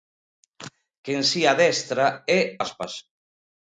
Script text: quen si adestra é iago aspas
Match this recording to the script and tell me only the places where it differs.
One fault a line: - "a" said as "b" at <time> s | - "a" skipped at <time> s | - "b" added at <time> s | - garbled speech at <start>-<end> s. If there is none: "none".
- "iago" skipped at 2.4 s